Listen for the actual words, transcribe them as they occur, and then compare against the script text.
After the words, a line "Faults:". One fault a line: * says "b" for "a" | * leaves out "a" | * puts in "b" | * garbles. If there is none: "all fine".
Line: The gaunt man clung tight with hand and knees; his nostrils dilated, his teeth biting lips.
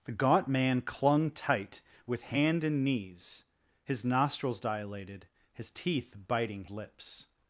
The gaunt man clung tight with hand and knees; his nostrils dilated, his teeth biting lips.
Faults:
all fine